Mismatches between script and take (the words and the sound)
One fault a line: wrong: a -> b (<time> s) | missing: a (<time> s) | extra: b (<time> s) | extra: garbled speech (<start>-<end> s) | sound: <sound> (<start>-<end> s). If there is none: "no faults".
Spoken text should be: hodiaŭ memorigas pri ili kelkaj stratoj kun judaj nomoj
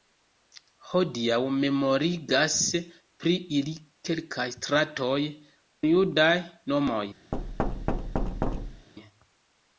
missing: kun (5.2 s)
sound: thud (7.3-8.9 s)